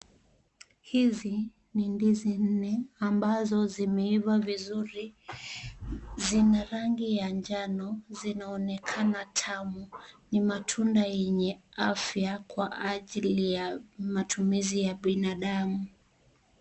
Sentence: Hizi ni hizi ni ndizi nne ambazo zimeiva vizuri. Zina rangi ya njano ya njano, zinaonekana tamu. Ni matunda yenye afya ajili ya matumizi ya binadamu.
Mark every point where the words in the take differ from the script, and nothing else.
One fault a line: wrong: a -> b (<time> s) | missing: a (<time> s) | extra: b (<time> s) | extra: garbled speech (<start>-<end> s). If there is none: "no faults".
missing: hizi ni (1.9 s)
missing: ya njano (8.0 s)
extra: kwa (12.4 s)